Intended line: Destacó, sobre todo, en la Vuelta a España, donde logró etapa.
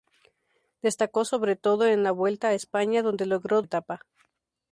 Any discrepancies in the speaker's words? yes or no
no